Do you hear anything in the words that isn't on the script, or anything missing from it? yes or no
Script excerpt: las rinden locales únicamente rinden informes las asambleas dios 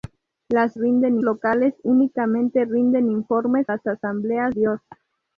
no